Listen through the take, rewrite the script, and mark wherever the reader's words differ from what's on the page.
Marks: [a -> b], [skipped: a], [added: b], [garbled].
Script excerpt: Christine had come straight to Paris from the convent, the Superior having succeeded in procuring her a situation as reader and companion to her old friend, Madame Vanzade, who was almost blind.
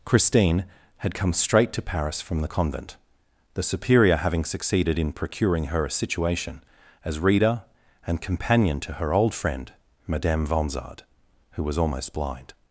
Christine had come straight to Paris from the convent, the Superior having succeeded in procuring her a situation as reader and companion to her old friend, Madame Vanzade, who was almost blind.